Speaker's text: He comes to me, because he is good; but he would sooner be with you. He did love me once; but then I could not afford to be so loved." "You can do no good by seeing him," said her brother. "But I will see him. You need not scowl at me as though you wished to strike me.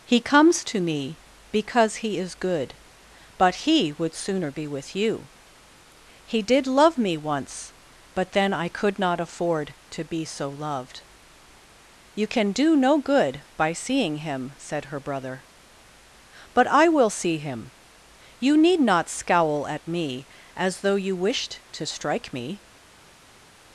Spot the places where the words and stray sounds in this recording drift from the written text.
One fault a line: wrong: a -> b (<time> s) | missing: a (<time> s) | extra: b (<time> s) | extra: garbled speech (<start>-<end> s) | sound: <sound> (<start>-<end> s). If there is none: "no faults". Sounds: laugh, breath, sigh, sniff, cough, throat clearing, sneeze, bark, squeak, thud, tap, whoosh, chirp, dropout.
no faults